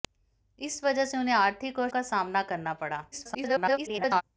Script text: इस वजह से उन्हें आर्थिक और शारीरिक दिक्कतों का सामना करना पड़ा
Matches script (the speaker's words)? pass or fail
fail